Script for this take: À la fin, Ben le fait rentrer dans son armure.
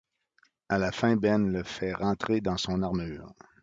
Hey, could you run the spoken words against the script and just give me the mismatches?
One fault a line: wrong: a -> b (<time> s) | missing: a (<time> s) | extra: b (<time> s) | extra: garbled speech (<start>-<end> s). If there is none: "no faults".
no faults